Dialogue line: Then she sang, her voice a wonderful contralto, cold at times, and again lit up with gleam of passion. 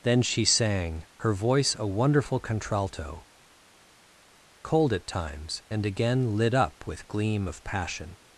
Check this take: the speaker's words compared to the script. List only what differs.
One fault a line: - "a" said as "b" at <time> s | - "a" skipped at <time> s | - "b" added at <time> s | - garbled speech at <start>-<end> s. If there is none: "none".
none